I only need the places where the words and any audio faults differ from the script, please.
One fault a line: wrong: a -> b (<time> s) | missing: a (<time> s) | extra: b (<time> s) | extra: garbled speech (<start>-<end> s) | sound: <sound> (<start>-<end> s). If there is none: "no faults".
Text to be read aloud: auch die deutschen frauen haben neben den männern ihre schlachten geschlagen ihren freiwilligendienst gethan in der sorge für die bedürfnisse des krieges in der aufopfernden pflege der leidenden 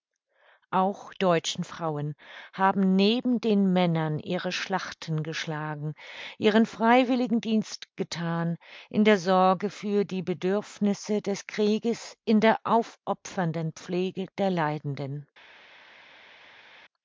missing: die (1.1 s)